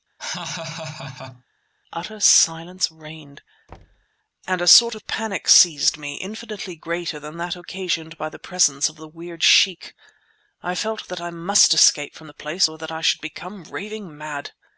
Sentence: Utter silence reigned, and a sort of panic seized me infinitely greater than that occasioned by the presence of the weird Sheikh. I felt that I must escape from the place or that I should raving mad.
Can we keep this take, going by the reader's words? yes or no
no